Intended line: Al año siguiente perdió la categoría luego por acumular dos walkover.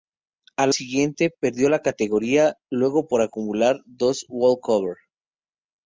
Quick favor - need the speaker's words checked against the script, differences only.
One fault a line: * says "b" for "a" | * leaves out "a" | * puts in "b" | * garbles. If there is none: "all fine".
* leaves out "año"